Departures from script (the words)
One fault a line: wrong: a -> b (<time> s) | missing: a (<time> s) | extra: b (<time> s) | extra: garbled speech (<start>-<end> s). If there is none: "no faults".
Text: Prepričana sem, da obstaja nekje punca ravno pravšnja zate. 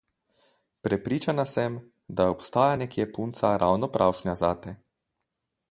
no faults